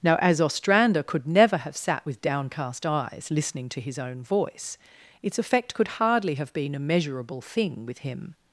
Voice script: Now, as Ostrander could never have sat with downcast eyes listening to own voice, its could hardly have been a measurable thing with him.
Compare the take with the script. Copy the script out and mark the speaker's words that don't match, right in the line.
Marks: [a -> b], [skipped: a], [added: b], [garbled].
Now, as Ostrander could never have sat with downcast eyes listening to [added: his] own voice, its [added: effect] could hardly have been a measurable thing with him.